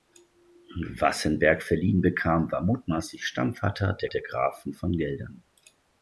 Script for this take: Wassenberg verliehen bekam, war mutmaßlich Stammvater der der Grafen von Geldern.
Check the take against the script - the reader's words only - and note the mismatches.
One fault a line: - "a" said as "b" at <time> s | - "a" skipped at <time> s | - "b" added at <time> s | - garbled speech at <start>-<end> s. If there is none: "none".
none